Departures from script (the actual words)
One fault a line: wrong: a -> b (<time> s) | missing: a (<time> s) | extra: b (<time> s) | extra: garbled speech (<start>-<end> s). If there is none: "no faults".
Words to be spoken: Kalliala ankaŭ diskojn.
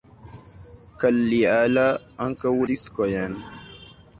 no faults